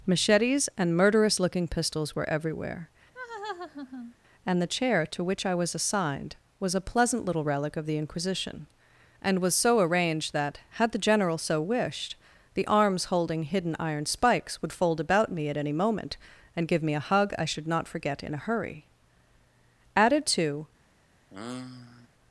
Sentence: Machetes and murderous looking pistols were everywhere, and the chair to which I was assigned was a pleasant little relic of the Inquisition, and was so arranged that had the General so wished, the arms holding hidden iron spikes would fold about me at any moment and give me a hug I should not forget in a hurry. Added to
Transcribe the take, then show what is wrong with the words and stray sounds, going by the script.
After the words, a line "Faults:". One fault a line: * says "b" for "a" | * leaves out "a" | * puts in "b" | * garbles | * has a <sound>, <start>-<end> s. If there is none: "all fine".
Machetes and murderous looking pistols were everywhere, and the chair to which I was assigned was a pleasant little relic of the Inquisition, and was so arranged that had the General so wished, the arms holding hidden iron spikes would fold about me at any moment and give me a hug I should not forget in a hurry. Added to
Faults:
* has a laugh, 3.1-4.1 s
* has a sigh, 21.3-22.1 s